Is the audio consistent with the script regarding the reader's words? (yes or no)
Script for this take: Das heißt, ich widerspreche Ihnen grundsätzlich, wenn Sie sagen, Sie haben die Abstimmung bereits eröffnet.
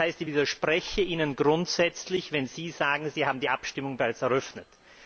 yes